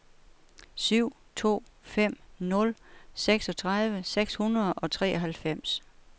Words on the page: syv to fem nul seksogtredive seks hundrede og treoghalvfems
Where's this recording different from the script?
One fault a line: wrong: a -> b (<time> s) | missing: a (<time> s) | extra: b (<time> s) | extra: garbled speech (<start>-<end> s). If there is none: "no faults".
no faults